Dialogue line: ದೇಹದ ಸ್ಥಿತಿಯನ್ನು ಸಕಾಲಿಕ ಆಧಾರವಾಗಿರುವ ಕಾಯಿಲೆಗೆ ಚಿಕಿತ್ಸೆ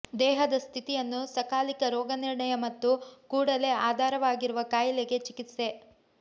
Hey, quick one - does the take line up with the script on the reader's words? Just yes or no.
no